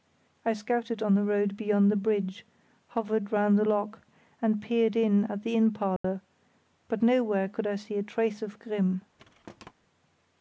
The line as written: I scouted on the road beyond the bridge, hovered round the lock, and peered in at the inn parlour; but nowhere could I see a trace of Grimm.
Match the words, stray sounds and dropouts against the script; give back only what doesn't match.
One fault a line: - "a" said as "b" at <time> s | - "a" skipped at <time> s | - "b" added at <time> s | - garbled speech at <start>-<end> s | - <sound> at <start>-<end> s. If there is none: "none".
- dropout at 6.0-6.0 s
- thud at 9.2-9.7 s